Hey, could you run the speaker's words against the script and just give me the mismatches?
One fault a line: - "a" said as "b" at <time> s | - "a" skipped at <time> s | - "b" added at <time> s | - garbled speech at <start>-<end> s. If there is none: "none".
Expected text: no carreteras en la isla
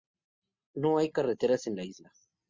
- "hay" added at 1.0 s